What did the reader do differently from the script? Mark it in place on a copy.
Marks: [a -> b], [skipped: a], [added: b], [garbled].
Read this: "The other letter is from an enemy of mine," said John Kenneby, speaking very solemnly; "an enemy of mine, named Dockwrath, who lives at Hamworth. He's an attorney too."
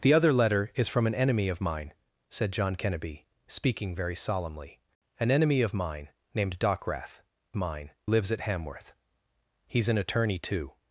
"The other letter is from an enemy of mine," said John Kenneby, speaking very solemnly; "an enemy of mine, named Dockwrath, [who -> mine] lives at Hamworth. He's an attorney too."